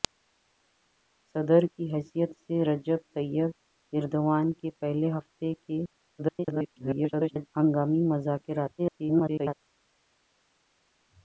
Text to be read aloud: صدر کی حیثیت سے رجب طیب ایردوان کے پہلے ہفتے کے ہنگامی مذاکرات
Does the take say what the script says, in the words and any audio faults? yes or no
no